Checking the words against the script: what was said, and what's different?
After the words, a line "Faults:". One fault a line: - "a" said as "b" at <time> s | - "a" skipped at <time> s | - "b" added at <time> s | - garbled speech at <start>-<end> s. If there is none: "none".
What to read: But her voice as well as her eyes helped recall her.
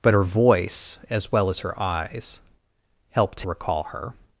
But her voice as well as her eyes helped recall her.
Faults:
none